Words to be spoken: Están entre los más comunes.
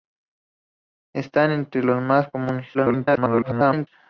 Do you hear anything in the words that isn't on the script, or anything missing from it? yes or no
yes